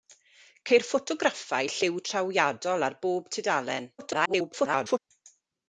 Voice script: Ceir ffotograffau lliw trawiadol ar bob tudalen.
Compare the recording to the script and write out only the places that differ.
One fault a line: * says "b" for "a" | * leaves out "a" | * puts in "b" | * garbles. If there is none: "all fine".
* garbles